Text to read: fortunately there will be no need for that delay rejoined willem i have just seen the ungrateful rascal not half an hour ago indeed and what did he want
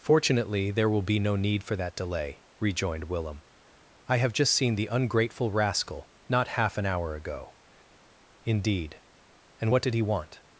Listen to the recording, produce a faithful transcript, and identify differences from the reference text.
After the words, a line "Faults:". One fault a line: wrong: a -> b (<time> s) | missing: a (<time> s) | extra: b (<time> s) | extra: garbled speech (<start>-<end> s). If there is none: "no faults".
fortunately there will be no need for that delay rejoined willem i have just seen the ungrateful rascal not half an hour ago indeed and what did he want
Faults:
no faults